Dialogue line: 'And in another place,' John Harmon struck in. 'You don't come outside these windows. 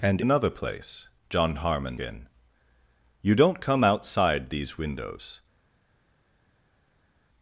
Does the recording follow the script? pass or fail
fail